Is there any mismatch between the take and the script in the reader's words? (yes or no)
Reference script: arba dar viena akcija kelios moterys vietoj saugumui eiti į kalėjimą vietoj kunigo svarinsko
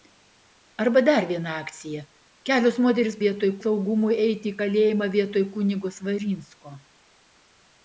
no